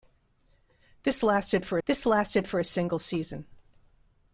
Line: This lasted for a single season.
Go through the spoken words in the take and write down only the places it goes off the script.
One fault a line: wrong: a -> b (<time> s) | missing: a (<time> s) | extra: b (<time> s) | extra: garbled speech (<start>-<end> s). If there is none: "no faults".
extra: this lasted for (1.9 s)